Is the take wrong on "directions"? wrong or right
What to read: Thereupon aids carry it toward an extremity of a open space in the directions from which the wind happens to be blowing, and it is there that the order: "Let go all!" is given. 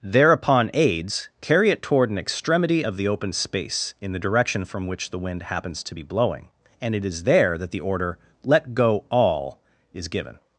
wrong